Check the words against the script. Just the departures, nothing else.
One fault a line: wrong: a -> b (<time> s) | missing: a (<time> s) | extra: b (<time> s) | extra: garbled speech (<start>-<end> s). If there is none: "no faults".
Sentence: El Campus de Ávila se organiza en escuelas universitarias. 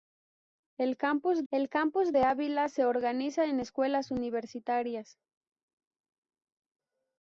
extra: el Campus (1.5 s)